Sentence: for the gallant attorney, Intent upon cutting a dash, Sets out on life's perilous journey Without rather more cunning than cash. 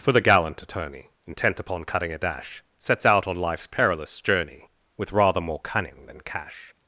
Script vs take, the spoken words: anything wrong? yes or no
yes